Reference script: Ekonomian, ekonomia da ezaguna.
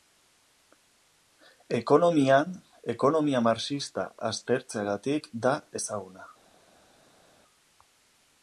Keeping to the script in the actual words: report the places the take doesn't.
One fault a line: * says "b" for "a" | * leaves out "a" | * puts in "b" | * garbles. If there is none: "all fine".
* puts in "marxista aztertzeagatik"